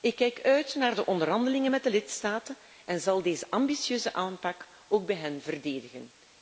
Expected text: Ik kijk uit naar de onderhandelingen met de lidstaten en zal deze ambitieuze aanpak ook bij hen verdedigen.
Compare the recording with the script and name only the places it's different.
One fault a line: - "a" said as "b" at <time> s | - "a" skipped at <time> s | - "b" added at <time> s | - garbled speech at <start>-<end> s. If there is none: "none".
none